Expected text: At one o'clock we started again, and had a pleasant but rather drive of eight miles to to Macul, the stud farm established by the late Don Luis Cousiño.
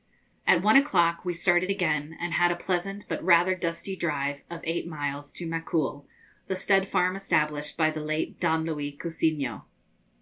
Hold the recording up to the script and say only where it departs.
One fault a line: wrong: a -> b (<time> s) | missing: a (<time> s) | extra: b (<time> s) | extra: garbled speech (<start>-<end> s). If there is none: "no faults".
extra: dusty (3.5 s)
missing: to (5.4 s)